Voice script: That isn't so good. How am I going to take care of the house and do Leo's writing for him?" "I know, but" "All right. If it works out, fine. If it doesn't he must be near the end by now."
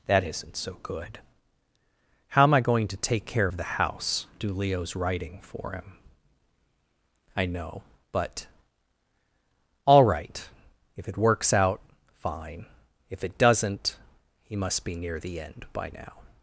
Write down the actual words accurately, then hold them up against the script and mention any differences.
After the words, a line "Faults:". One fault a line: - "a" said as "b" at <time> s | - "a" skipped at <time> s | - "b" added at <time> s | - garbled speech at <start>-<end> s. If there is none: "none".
That isn't so good. How am I going to take care of the house do Leo's writing for him?" "I know, but" "All right. If it works out, fine. If it doesn't he must be near the end by now."
Faults:
- "and" skipped at 4.3 s